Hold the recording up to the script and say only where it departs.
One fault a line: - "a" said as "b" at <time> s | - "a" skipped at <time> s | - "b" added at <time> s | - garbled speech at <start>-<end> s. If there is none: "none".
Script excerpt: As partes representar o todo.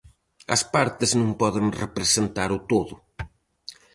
- "non poden" added at 1.2 s